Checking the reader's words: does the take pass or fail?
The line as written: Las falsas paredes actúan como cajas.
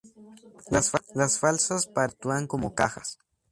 pass